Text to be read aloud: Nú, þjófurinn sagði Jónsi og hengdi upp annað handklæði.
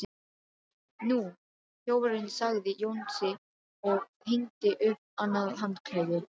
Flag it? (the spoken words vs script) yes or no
no